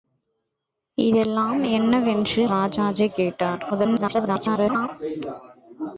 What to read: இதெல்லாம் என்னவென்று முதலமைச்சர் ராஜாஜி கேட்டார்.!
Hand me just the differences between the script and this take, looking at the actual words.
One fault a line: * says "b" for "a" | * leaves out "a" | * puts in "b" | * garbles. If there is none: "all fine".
* leaves out "முதலமைச்சர்"
* garbles